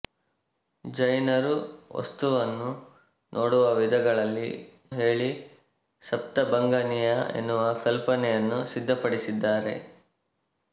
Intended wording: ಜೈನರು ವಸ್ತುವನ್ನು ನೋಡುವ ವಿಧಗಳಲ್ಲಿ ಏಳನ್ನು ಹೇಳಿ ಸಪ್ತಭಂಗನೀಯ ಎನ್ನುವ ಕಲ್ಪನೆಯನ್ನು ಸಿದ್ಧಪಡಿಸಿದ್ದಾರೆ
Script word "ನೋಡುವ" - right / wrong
right